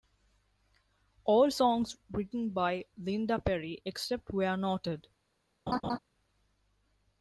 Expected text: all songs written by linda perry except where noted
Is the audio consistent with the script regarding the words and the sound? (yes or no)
no